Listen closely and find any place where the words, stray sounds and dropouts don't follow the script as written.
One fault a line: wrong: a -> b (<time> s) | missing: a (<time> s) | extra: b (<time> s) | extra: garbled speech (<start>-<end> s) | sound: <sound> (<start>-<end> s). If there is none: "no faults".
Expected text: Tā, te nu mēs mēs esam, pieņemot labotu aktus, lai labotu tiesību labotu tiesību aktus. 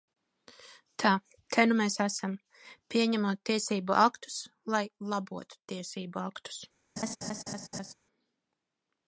missing: mēs (2.0 s)
wrong: labotu -> tiesību (3.5 s)
missing: labotu tiesību (6.2 s)
sound: laugh (7.0-7.9 s)